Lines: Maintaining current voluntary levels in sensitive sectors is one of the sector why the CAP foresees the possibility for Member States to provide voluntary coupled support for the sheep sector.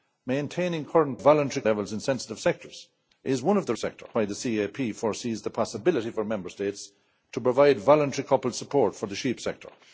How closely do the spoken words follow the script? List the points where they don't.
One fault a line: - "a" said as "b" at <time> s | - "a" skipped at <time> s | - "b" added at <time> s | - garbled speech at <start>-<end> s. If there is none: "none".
none